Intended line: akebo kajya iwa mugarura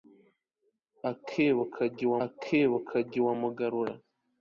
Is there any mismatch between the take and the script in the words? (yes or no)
yes